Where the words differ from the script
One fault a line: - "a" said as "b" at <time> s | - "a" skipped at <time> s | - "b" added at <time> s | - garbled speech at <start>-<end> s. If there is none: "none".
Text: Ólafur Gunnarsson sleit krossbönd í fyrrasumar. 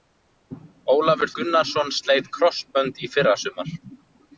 none